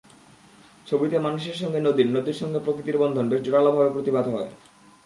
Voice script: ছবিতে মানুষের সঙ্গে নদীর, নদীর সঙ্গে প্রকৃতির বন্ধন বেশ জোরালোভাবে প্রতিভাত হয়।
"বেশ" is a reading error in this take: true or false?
false